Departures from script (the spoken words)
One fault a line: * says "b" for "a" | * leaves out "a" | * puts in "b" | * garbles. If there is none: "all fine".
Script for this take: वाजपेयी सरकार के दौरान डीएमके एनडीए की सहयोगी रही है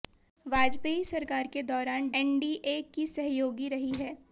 * leaves out "डीएमके"